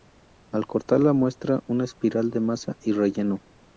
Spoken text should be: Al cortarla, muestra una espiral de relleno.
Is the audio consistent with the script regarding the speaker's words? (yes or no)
no